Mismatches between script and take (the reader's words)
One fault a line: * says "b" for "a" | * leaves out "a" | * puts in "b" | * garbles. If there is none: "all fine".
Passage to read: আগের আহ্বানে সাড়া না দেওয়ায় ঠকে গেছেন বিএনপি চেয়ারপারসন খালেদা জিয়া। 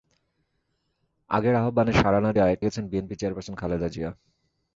* leaves out "ঠকে"